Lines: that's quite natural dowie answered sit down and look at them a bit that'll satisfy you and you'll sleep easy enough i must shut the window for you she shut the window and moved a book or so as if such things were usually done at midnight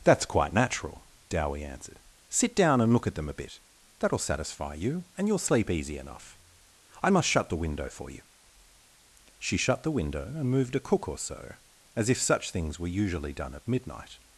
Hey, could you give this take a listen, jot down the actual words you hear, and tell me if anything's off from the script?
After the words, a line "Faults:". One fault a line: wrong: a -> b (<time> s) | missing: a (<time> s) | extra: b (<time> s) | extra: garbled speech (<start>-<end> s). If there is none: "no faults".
that's quite natural dowie answered sit down and look at them a bit that'll satisfy you and you'll sleep easy enough i must shut the window for you she shut the window and moved a cook or so as if such things were usually done at midnight
Faults:
wrong: book -> cook (10.8 s)